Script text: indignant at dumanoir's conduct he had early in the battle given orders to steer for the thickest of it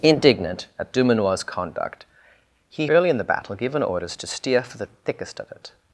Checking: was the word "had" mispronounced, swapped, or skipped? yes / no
yes